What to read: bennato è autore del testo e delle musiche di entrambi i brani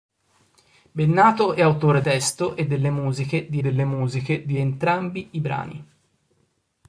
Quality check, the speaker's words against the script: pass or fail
fail